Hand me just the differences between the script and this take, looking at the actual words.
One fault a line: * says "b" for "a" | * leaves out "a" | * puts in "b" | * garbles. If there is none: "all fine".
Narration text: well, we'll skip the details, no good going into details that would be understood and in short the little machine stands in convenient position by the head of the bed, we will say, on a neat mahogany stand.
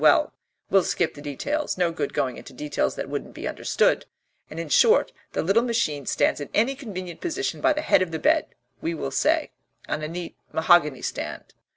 * says "wouldn't" for "would"
* puts in "any"